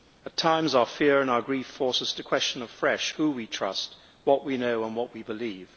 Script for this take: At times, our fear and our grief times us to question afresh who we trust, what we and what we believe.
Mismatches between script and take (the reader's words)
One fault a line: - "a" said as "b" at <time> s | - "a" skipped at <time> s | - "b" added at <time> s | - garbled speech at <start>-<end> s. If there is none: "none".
- "times" said as "force" at 1.7 s
- "know" added at 4.6 s